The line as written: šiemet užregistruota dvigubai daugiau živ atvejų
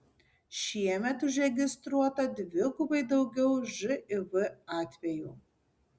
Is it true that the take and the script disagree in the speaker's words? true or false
false